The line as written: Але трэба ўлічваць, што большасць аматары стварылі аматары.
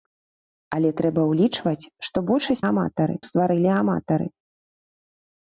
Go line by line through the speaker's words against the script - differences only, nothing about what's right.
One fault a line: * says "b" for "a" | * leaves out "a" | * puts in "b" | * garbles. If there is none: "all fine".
all fine